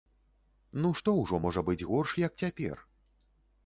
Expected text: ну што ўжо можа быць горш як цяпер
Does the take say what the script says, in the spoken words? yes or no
yes